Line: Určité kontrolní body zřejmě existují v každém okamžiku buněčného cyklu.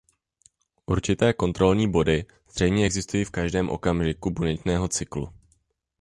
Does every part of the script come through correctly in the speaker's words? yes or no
yes